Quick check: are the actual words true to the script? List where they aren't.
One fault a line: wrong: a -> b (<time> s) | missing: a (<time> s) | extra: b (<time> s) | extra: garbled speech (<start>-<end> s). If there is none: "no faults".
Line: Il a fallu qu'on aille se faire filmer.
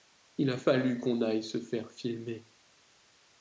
no faults